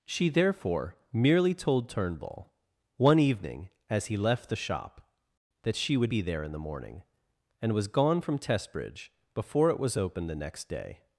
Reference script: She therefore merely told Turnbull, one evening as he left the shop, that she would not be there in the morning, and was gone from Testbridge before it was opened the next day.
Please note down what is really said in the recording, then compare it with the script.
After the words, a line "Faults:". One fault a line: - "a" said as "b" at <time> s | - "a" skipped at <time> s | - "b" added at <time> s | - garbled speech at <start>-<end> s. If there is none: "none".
She therefore merely told Turnbull, one evening as he left the shop, that she would be there in the morning, and was gone from Testbridge before it was opened the next day.
Faults:
- "not" skipped at 6.1 s